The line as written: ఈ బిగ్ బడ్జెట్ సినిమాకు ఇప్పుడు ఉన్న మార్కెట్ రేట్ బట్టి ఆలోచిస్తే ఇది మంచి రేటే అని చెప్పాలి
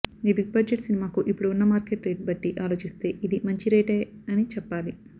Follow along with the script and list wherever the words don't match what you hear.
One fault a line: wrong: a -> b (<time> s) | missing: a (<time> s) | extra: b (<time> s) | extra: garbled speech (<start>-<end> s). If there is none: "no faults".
no faults